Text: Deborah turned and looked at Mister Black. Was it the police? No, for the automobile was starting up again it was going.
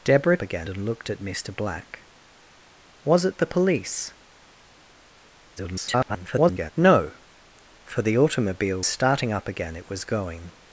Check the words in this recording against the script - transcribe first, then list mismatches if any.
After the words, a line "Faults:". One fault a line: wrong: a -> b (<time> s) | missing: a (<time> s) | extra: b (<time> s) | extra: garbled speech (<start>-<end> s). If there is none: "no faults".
Deborah again and looked at Mister Black. Was it the police? [garbled] No, for the automobile starting up again it was going.
Faults:
wrong: turned -> again (0.4 s)
extra: garbled speech (5.6-6.7 s)
missing: was (8.8 s)